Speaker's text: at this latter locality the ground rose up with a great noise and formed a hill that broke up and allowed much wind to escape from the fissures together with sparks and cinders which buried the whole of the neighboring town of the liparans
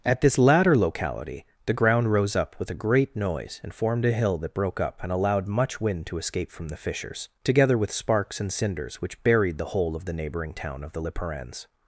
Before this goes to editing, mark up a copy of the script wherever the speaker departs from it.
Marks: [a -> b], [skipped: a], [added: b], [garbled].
at this latter locality the ground rose up with a great noise and formed a hill that broke up and allowed much wind to escape from the fissures together with sparks and cinders which buried the whole of the neighboring town of the liparans